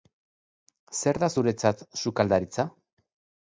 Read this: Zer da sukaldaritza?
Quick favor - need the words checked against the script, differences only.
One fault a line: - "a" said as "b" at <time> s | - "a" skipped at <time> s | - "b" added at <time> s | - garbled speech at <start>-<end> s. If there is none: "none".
- "zuretzat" added at 1.3 s